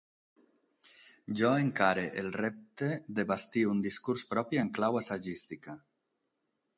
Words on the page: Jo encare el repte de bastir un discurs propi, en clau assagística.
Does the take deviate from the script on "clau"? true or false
false